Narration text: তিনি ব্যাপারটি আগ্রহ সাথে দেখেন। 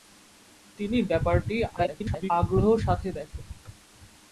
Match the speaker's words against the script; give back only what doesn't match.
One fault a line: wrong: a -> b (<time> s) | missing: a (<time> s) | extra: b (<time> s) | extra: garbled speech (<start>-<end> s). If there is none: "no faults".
extra: garbled speech (1.8-2.3 s)